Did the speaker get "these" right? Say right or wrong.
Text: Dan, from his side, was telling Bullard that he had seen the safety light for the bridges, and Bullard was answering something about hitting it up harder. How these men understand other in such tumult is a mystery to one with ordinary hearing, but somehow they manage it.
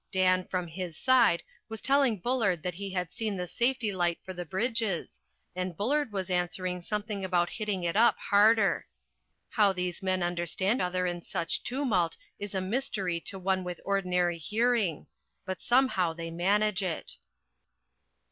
right